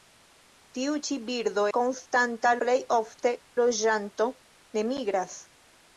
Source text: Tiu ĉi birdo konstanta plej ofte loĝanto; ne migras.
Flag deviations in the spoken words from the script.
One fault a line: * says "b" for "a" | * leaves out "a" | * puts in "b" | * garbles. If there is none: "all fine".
all fine